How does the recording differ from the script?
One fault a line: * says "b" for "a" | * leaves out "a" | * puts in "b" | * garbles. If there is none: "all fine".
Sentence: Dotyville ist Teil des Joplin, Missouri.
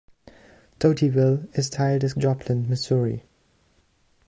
all fine